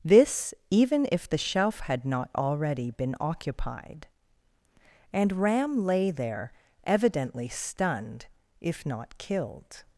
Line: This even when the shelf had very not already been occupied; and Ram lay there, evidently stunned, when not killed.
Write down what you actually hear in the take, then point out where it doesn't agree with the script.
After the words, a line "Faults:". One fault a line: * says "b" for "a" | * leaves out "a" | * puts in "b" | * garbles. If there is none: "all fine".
This even if the shelf had not already been occupied; and Ram lay there, evidently stunned, if not killed.
Faults:
* says "if" for "when"
* leaves out "very"
* says "if" for "when"